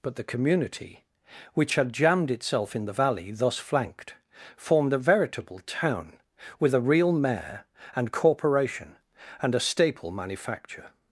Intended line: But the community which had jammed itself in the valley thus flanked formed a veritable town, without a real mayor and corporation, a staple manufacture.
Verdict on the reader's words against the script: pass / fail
fail